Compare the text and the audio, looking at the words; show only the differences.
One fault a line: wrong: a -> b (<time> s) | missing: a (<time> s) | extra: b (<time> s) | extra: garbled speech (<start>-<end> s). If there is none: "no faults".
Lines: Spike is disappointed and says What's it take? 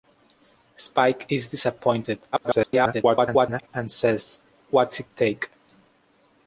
extra: garbled speech (2.3-3.7 s)